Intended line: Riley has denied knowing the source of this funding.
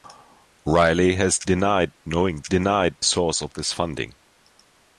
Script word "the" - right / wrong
wrong